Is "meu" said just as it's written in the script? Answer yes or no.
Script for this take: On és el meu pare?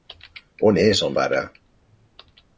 no